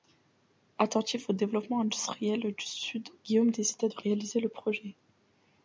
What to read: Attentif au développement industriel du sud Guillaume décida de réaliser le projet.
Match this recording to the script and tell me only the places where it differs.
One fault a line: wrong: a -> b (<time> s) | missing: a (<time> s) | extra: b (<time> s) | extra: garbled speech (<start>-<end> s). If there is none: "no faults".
no faults